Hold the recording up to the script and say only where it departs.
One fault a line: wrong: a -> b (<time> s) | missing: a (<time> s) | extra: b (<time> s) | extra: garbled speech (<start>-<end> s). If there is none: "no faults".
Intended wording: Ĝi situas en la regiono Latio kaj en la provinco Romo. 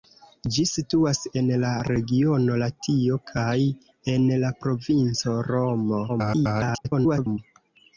extra: garbled speech (6.1-7.4 s)